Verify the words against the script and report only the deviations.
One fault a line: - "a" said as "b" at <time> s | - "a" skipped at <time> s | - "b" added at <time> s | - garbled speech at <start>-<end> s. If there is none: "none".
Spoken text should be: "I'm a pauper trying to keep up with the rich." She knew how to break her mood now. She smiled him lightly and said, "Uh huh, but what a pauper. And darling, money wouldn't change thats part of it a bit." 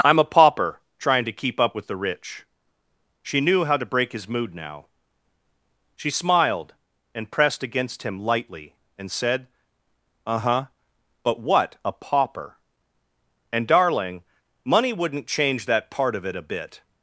- "her" said as "his" at 4.1 s
- "and pressed against" added at 7.1 s
- "thats" said as "that" at 15.7 s